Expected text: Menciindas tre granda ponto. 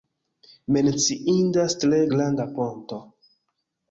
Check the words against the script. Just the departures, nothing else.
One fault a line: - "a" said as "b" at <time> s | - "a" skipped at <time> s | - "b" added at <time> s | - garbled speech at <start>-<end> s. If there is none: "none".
none